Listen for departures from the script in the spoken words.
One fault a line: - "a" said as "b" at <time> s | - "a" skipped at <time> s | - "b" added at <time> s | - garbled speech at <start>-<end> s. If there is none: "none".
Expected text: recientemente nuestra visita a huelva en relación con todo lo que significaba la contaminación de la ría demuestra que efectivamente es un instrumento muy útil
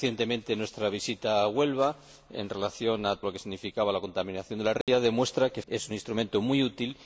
- "todo" skipped at 3.2 s
- "efectivamente" skipped at 5.6 s